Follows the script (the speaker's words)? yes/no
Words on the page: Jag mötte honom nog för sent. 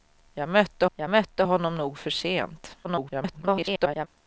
no